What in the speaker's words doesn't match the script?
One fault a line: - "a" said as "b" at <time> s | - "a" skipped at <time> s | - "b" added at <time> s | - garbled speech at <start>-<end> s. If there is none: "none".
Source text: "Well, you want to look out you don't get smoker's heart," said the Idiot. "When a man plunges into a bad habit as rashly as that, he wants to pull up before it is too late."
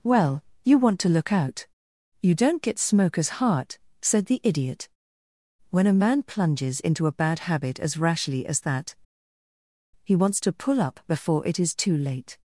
none